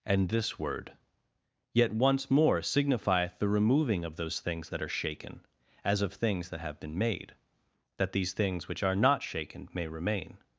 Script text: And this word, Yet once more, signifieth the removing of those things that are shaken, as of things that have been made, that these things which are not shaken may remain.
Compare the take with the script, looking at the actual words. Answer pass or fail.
pass